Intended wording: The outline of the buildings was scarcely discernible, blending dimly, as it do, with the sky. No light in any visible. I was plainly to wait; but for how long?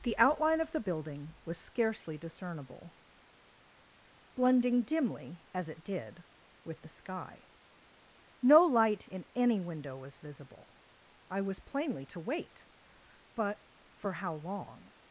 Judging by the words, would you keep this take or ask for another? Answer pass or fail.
fail